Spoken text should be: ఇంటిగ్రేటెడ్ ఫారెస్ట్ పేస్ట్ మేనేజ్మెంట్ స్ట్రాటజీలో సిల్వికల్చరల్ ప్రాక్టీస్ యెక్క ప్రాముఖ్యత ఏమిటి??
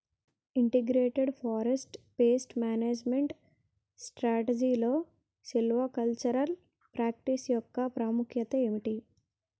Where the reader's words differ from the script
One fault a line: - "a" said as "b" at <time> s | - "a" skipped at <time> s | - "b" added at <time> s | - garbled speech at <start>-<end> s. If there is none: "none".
none